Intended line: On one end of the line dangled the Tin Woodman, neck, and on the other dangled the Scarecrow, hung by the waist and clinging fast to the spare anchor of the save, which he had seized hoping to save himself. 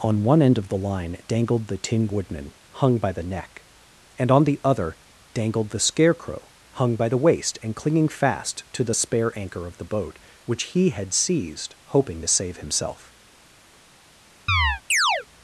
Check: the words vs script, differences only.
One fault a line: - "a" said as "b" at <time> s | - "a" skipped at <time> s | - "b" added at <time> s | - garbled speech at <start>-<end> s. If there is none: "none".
- "hung by the" added at 2.7 s
- "save" said as "boat" at 9.8 s